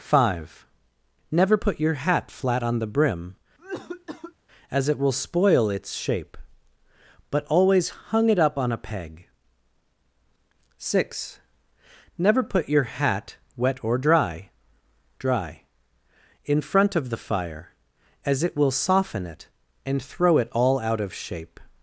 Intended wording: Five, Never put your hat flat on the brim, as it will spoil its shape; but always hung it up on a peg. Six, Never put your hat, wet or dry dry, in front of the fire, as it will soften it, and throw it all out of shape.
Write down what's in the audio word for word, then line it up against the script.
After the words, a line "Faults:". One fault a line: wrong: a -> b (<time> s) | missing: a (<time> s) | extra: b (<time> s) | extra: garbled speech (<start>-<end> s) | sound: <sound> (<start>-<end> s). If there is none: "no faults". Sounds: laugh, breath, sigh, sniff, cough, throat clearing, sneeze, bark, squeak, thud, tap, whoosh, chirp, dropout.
Five, Never put your hat flat on the brim, as it will spoil its shape; but always hung it up on a peg. Six, Never put your hat, wet or dry dry, in front of the fire, as it will soften it, and throw it all out of shape.
Faults:
sound: cough (3.6-4.3 s)